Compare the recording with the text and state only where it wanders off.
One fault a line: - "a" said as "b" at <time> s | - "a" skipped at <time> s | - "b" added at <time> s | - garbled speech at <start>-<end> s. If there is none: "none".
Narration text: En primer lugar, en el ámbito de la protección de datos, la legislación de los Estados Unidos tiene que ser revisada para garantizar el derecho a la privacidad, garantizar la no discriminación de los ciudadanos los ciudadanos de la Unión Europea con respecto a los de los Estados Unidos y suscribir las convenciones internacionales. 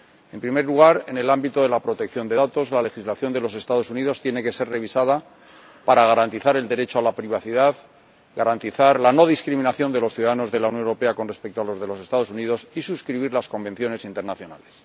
- "los ciudadanos" skipped at 10.5 s